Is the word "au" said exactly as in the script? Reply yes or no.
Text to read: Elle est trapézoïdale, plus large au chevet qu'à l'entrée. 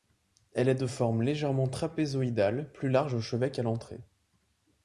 yes